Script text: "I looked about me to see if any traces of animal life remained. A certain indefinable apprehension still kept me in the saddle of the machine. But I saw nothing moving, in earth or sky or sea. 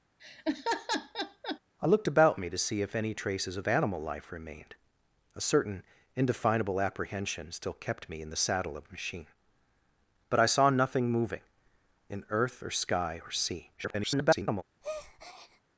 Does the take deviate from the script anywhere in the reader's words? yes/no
yes